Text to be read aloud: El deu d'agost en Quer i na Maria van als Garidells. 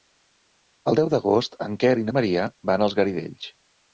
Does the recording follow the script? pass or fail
pass